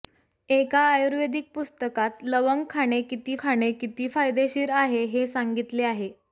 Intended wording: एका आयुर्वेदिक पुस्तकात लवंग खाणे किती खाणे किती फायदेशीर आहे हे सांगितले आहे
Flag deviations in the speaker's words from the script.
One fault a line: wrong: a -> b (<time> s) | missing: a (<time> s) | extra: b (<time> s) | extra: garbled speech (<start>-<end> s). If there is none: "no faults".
no faults